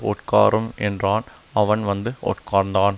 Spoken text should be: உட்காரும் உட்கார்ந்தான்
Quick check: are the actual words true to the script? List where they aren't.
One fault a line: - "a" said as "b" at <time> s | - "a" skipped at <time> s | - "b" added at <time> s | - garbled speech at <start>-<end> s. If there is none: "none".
- "என்றான் அவன் வந்து" added at 0.8 s